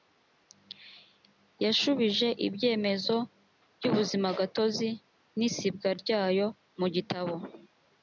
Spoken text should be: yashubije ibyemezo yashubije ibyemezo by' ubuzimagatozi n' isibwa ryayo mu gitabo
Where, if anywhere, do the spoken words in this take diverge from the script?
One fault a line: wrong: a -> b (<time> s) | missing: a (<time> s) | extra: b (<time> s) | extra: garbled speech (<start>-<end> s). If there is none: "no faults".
missing: yashubije ibyemezo (3.1 s)